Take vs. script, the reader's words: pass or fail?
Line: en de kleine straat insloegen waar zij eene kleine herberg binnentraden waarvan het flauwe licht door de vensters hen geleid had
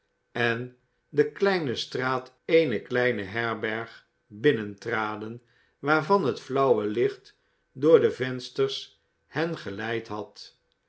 fail